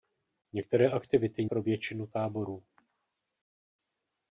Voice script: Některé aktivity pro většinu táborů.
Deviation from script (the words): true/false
false